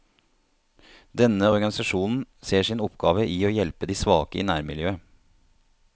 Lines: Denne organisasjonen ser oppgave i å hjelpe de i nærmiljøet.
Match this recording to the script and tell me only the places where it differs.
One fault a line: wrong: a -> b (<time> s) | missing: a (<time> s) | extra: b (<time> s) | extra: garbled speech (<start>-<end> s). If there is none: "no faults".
extra: sin (2.7 s)
extra: svake (4.0 s)